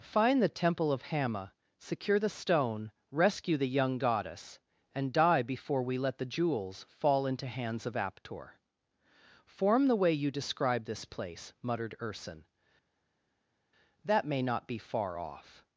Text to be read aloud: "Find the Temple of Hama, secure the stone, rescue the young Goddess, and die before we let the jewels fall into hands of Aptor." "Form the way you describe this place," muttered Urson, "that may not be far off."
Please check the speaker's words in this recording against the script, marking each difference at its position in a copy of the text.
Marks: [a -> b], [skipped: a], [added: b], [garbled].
"Find the Temple of Hama, secure the stone, rescue the young Goddess, and die before we let the jewels fall into hands of Aptor." "Form the way you describe this place," muttered Urson, "that may not be far off."